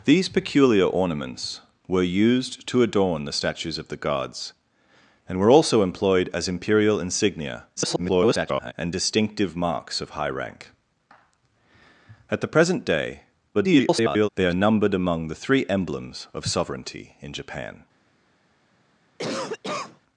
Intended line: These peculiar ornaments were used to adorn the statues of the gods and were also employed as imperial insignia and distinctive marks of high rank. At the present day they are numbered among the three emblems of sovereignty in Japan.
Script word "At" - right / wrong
right